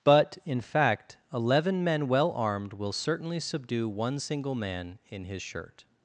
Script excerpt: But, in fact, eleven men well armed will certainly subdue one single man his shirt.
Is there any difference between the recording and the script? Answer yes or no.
yes